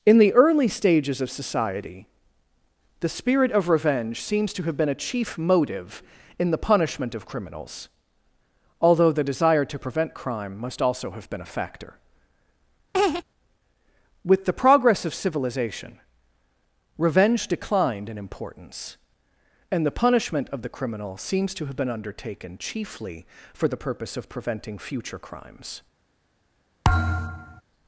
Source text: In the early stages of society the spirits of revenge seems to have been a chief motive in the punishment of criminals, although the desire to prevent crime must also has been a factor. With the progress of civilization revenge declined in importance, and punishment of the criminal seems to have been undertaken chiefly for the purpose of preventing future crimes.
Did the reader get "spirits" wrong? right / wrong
wrong